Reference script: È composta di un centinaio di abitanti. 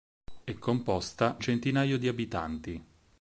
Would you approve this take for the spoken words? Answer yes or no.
no